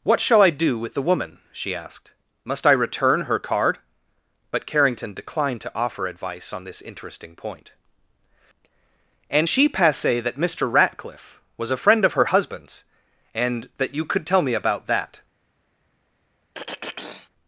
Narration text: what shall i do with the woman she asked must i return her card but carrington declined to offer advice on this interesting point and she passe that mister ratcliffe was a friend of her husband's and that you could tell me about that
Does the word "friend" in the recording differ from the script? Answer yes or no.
no